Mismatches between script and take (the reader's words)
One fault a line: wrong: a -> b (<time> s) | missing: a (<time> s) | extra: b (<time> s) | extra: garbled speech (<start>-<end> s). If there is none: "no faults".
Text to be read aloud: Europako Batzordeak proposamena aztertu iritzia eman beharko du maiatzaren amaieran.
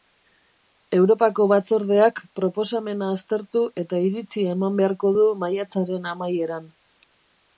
extra: eta (3.8 s)